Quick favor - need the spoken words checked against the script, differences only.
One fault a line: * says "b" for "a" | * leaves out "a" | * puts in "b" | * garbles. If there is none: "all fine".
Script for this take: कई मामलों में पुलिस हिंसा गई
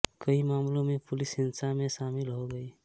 * puts in "में शामिल हो"